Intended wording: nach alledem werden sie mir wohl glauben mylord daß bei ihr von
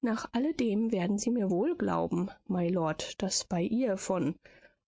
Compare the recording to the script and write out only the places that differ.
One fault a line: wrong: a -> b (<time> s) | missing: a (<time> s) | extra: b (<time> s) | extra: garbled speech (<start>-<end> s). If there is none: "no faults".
no faults